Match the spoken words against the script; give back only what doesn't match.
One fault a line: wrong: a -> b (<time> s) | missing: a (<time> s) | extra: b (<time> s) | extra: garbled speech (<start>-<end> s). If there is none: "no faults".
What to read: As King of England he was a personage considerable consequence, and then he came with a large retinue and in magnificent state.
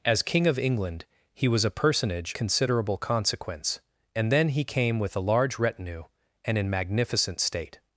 no faults